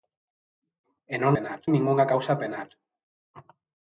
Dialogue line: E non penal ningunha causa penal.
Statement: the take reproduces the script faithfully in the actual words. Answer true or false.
true